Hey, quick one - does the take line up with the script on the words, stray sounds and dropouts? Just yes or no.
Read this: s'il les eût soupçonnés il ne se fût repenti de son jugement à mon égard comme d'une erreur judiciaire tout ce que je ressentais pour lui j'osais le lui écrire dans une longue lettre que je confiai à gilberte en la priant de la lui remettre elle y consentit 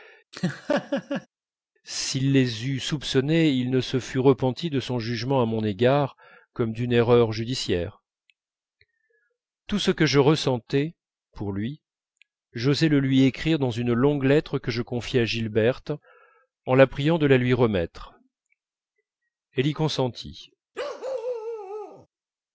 no